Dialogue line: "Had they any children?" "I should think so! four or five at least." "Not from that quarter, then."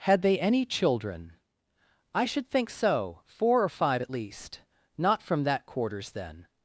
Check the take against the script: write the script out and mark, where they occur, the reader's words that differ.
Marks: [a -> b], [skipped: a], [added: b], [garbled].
"Had they any children?" "I should think so! four or five at least." "Not from that [quarter, -> quarters] then."